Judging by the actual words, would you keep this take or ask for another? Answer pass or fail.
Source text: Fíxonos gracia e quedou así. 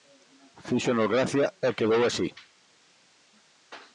pass